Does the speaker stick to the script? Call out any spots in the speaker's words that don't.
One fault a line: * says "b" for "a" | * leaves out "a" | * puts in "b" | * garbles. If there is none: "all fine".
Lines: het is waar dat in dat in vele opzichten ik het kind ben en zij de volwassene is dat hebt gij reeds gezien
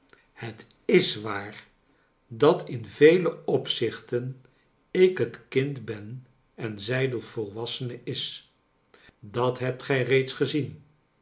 * leaves out "dat in"